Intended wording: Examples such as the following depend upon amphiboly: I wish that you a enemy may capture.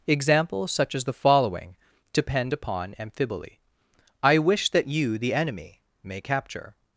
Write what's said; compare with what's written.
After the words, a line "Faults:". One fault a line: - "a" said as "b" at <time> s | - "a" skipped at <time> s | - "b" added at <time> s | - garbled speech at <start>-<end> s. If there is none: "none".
Examples such as the following depend upon amphiboly: I wish that you the enemy may capture.
Faults:
- "a" said as "the" at 5.2 s